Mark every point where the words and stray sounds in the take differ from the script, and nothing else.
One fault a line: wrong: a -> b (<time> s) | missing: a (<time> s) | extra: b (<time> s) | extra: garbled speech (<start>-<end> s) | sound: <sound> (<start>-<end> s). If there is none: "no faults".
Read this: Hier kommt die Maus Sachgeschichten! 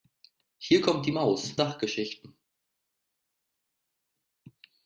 no faults